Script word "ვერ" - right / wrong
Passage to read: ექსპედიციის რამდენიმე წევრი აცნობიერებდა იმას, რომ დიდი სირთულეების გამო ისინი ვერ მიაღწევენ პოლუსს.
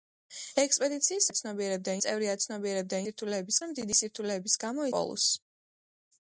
wrong